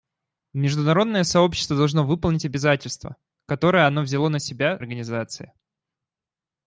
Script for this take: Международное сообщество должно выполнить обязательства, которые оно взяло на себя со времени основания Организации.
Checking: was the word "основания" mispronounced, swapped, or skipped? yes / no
yes